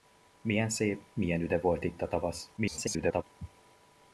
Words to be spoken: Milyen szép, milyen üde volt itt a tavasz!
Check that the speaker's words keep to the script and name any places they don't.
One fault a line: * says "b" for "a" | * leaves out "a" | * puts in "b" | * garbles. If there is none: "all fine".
* garbles